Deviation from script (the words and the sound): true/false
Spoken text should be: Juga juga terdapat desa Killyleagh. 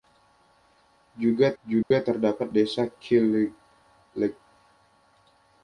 true